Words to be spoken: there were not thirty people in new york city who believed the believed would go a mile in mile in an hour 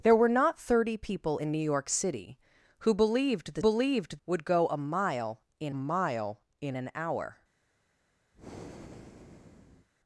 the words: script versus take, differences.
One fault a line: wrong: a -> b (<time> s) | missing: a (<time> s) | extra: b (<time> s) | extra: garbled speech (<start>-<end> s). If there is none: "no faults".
no faults